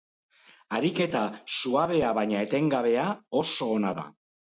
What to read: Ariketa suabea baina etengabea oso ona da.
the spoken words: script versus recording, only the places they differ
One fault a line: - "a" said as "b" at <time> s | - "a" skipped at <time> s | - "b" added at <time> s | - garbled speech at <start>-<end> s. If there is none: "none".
none